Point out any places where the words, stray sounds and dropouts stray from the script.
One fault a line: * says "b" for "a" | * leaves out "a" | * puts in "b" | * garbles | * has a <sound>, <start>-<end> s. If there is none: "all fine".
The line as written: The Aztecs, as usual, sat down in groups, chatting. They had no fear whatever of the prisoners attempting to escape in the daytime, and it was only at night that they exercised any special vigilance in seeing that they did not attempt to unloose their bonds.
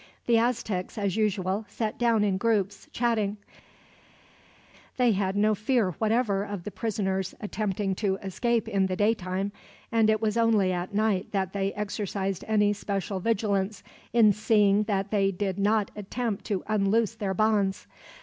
all fine